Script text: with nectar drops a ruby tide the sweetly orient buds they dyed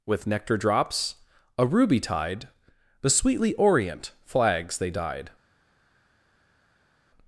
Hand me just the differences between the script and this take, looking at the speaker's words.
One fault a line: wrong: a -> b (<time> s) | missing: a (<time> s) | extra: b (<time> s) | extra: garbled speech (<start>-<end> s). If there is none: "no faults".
wrong: buds -> flags (4.2 s)